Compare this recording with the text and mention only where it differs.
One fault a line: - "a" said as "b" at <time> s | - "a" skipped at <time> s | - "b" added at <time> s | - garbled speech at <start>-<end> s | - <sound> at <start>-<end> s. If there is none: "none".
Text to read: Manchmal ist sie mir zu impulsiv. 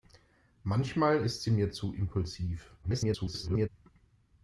- garbled speech at 2.8-3.7 s